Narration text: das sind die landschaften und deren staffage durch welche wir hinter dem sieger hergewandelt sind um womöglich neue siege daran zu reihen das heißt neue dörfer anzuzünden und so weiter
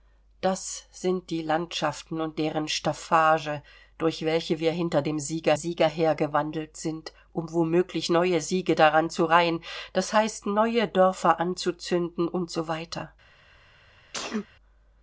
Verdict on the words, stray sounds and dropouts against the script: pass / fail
fail